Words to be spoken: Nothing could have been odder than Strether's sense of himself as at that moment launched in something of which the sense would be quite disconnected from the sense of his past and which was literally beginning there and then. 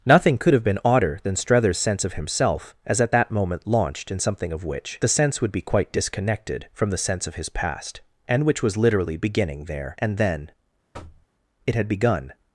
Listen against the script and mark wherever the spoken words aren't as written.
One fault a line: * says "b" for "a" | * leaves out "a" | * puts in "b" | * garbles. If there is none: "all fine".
* puts in "It had begun"